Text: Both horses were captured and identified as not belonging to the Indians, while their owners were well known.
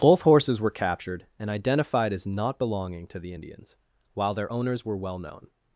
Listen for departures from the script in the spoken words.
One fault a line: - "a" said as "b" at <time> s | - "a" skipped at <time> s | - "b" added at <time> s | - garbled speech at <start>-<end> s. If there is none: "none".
none